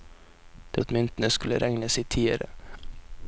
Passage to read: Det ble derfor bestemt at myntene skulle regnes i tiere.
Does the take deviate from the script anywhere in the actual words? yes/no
yes